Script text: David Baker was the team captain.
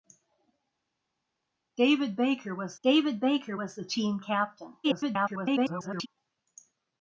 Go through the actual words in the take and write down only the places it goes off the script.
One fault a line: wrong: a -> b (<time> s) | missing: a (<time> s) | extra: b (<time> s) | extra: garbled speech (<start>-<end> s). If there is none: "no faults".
extra: david Baker was (2.8 s)
extra: garbled speech (4.8-6.1 s)